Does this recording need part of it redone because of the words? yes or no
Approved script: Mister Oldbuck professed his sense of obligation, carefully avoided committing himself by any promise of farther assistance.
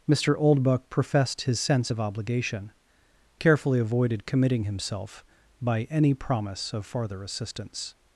no